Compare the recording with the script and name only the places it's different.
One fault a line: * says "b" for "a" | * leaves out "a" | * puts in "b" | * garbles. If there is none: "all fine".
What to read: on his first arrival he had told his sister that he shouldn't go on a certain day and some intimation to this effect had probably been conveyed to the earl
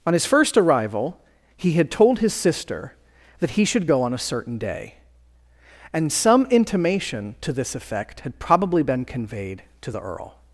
* says "should" for "shouldn't"